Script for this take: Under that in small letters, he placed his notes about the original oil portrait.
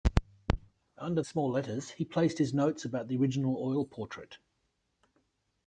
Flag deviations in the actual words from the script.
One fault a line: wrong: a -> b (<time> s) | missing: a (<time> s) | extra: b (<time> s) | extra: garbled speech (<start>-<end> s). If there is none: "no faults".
missing: that in (1.2 s)